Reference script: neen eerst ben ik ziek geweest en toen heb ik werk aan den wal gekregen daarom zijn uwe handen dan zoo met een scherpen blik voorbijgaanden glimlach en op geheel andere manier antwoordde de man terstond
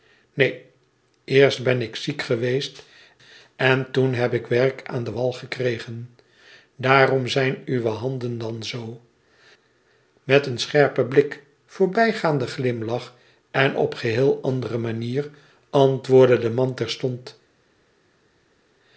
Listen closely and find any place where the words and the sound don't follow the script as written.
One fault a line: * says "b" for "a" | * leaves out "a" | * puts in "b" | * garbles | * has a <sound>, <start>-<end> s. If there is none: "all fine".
all fine